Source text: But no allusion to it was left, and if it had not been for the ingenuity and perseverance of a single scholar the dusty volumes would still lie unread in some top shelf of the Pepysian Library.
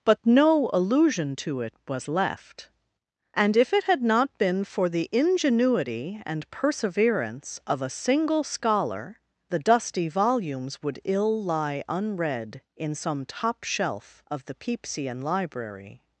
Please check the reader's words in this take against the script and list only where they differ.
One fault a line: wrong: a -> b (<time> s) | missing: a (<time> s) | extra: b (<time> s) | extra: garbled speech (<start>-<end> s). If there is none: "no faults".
wrong: still -> ill (11.0 s)